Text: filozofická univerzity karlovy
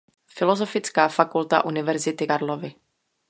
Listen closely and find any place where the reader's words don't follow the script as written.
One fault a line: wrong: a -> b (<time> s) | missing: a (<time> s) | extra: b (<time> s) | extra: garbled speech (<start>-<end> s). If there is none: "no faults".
extra: fakulta (1.1 s)